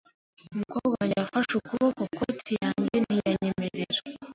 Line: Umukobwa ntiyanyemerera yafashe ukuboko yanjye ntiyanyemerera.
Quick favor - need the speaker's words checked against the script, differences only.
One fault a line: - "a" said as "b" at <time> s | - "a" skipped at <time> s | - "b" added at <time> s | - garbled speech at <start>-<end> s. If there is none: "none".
- "ntiyanyemerera" said as "wanjye" at 1.0 s
- "koti" added at 2.2 s